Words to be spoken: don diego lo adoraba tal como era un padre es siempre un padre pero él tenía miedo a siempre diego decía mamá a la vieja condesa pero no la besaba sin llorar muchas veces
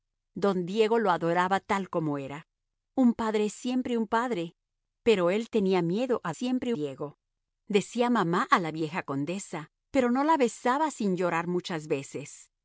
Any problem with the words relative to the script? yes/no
no